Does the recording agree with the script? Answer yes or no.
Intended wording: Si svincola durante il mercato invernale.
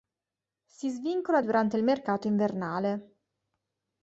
yes